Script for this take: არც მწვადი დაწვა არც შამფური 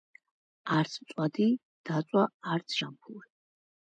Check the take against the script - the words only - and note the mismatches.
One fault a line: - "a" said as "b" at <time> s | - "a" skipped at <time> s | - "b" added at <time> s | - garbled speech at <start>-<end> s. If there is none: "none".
none